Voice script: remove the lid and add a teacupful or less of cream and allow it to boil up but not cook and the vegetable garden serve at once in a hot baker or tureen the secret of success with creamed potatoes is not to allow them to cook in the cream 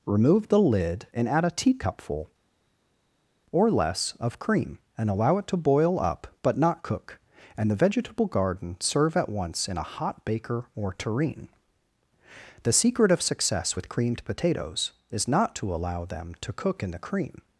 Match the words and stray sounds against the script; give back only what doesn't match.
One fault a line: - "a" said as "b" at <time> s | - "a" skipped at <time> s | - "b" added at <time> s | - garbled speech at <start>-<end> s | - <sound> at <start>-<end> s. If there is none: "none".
none